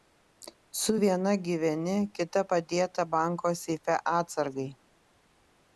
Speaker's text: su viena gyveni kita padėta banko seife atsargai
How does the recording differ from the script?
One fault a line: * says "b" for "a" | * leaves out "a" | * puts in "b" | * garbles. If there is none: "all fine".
all fine